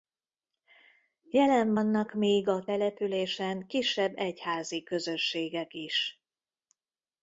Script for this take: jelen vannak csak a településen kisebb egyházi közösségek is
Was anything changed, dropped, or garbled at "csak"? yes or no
yes